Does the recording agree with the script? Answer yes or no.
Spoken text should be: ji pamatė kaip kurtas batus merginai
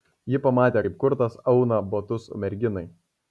no